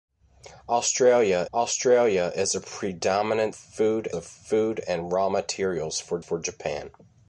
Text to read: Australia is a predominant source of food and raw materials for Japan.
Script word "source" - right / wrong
wrong